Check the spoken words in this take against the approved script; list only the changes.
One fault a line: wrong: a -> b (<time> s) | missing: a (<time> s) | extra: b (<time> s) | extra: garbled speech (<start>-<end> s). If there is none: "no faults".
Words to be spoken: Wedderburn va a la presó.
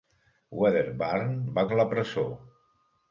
no faults